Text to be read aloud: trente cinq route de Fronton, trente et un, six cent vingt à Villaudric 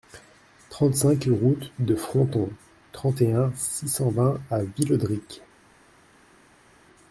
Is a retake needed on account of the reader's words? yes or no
no